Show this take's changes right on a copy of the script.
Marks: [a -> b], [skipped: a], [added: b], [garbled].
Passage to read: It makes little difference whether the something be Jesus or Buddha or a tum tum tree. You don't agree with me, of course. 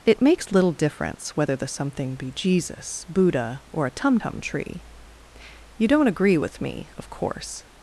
It makes little difference whether the something be Jesus [skipped: or] Buddha or a tum tum tree. You don't agree with me, of course.